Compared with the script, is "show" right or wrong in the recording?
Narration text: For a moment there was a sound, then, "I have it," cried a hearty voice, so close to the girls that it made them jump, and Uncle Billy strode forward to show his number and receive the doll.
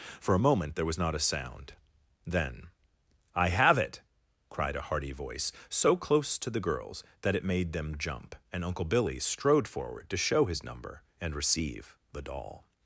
right